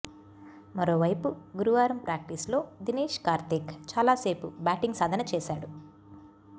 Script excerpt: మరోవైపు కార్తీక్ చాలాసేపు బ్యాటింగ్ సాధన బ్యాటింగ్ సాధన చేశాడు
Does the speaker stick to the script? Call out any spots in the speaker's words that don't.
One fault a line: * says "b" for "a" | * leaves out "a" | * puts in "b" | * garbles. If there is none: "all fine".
* puts in "గురువారం ప్రాక్టీస్లో దినేశ్"
* leaves out "బ్యాటింగ్ సాధన"